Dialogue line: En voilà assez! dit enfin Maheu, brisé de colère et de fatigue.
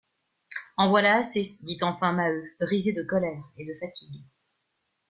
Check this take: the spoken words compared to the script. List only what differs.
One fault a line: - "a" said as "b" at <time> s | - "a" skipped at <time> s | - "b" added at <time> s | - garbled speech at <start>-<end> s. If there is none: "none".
none